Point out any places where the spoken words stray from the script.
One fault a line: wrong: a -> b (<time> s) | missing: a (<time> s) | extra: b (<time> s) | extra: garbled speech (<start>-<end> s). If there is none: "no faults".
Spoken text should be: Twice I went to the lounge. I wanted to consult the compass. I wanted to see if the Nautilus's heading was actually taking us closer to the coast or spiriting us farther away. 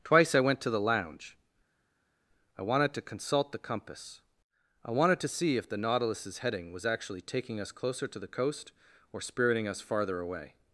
no faults